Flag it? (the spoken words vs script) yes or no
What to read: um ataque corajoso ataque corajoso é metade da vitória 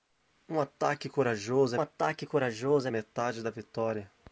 no